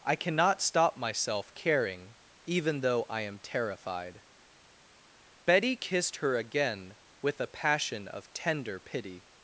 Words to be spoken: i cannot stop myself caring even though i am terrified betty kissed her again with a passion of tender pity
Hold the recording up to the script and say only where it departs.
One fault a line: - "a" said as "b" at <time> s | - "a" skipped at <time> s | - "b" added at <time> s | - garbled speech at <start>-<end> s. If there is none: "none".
none